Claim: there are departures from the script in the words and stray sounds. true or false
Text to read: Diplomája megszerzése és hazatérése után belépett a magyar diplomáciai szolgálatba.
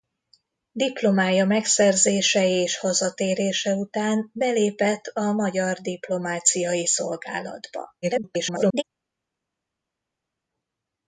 true